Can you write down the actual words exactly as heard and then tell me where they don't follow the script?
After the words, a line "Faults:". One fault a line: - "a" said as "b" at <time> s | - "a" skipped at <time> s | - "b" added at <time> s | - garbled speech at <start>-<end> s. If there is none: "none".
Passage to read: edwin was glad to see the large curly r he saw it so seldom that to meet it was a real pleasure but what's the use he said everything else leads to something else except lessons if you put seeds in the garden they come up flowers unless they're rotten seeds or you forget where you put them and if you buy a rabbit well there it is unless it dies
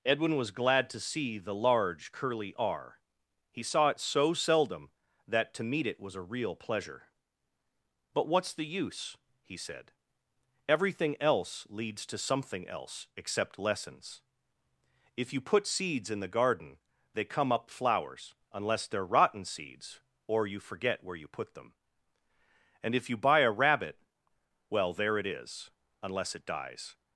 edwin was glad to see the large curly r he saw it so seldom that to meet it was a real pleasure but what's the use he said everything else leads to something else except lessons if you put seeds in the garden they come up flowers unless they're rotten seeds or you forget where you put them and if you buy a rabbit well there it is unless it dies
Faults:
none